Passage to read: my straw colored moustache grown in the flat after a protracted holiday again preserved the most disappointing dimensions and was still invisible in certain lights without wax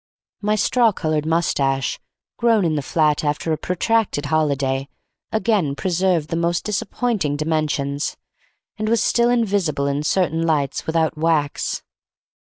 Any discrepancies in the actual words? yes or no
no